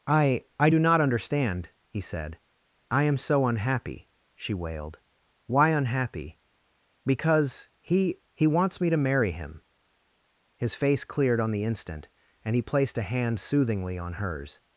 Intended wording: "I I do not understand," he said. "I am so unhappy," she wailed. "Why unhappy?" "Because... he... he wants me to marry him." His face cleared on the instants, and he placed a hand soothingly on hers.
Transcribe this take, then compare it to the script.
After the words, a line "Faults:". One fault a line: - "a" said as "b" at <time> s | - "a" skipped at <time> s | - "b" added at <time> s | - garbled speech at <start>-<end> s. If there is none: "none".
"I I do not understand," he said. "I am so unhappy," she wailed. "Why unhappy?" "Because... he... he wants me to marry him." His face cleared on the instant, and he placed a hand soothingly on hers.
Faults:
- "instants" said as "instant" at 11.6 s